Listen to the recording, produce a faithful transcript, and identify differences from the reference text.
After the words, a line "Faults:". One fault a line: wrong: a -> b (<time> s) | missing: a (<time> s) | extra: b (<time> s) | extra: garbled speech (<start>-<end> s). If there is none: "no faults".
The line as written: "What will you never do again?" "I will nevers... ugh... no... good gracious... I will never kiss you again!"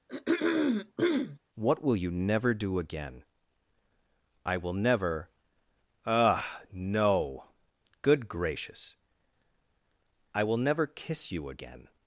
"What will you never do again?" "I will never... ugh... no... good gracious... I will never kiss you again!"
Faults:
wrong: nevers -> never (4.7 s)